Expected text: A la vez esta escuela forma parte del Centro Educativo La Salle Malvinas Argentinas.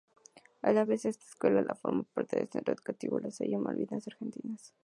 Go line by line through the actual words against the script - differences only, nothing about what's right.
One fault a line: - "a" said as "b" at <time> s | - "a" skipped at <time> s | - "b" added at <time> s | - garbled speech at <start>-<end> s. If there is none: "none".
none